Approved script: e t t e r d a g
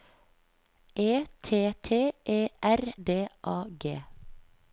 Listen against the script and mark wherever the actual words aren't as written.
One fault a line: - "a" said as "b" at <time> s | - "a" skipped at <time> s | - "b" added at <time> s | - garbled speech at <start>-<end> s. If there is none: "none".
none